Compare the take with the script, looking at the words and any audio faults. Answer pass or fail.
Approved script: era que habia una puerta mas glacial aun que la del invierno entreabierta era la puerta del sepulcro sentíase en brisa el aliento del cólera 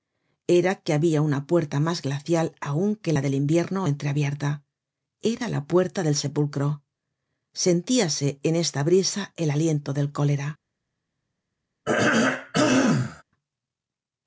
fail